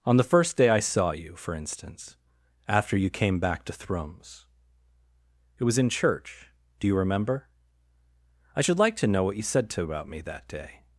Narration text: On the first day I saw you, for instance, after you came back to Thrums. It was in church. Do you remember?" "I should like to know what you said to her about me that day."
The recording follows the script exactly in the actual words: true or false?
false